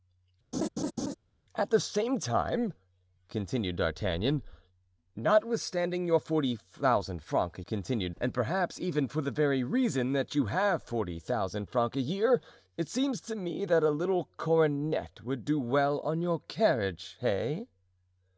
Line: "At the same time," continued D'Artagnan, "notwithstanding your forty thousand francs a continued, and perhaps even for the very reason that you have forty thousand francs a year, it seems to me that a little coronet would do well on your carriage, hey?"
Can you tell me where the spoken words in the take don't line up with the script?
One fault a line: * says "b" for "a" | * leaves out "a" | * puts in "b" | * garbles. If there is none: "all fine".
all fine